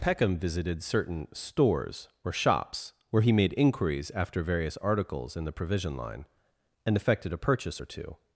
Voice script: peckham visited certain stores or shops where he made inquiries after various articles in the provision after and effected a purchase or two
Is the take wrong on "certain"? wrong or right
right